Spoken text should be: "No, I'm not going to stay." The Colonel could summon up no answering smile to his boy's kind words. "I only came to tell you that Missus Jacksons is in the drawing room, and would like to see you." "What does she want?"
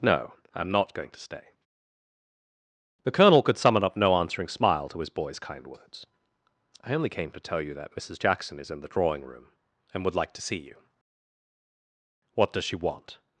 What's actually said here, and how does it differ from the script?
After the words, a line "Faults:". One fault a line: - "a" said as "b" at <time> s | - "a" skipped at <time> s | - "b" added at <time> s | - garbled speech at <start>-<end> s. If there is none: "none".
"No, I'm not going to stay." The Colonel could summon up no answering smile to his boy's kind words. "I only came to tell you that Missus Jackson is in the drawing room, and would like to see you." "What does she want?"
Faults:
- "Jacksons" said as "Jackson" at 8.2 s